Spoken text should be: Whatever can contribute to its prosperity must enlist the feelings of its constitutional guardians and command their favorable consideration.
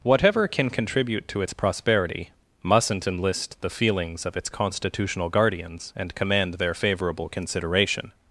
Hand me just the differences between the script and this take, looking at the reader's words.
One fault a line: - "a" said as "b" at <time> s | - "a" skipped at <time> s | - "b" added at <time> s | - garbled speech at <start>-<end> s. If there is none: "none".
- "must" said as "mustn't" at 2.6 s